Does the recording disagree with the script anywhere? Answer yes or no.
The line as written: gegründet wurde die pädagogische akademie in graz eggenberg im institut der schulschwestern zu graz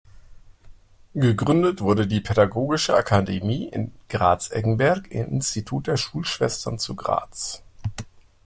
no